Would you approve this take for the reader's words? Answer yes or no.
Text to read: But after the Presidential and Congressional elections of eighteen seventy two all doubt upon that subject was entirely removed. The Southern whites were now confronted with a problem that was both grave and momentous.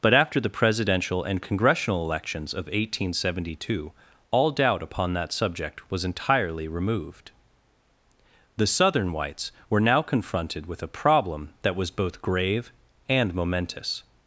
yes